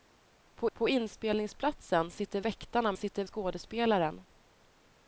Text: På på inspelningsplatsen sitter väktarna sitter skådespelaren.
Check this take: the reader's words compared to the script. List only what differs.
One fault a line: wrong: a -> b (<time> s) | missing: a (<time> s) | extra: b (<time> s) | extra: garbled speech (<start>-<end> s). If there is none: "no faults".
no faults